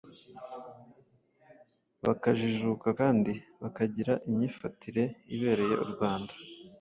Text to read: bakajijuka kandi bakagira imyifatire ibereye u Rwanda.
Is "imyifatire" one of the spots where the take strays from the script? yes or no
no